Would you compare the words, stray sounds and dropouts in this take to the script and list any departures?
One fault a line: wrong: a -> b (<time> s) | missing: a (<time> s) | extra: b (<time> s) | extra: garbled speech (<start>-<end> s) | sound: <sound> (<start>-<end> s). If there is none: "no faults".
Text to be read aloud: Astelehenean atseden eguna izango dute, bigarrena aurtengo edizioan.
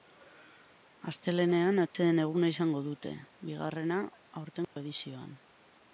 sound: dropout (1.9-1.9 s)
sound: dropout (4.6-4.8 s)